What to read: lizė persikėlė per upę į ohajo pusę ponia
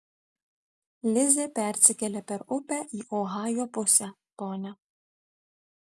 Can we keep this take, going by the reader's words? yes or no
yes